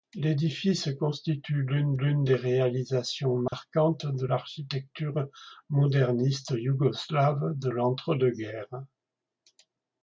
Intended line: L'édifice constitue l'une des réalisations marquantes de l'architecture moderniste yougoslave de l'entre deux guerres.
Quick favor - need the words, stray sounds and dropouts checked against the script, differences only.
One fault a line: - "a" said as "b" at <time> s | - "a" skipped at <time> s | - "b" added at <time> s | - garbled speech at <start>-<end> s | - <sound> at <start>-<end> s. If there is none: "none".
- "l'une" added at 1.9 s
- dropout at 3.5-3.5 s